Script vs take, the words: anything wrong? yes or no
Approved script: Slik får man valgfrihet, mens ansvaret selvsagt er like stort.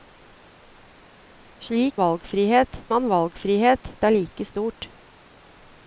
yes